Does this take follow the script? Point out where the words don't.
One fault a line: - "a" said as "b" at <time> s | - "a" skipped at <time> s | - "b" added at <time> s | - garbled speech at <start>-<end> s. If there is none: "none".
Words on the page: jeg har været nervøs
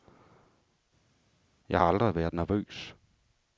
- "aldrig" added at 1.8 s